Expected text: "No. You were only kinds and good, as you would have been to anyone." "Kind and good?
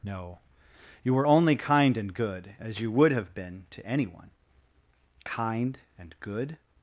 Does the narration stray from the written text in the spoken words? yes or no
yes